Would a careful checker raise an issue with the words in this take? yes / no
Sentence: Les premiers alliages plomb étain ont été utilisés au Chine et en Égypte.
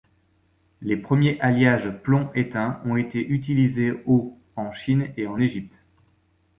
yes